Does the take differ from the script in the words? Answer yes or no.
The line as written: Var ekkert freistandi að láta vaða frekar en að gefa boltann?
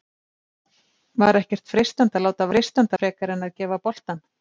yes